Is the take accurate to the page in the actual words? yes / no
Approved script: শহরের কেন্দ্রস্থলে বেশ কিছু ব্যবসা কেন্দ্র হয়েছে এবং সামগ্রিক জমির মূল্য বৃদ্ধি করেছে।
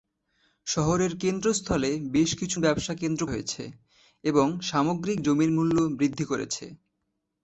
yes